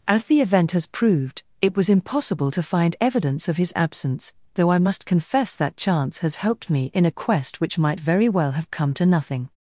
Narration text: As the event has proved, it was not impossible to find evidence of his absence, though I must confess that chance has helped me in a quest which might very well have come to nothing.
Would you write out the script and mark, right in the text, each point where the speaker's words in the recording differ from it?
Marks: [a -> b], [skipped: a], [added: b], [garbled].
As the event has proved, it was [skipped: not] impossible to find evidence of his absence, though I must confess that chance has helped me in a quest which might very well have come to nothing.